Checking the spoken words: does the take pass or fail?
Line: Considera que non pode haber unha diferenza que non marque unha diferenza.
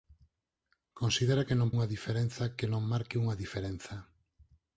fail